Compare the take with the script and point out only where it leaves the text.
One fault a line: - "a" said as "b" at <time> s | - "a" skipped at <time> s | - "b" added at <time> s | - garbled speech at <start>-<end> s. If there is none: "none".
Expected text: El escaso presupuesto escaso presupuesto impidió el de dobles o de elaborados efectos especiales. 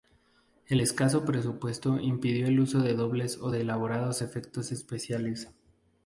- "escaso presupuesto" skipped at 2.0 s
- "uso" added at 2.6 s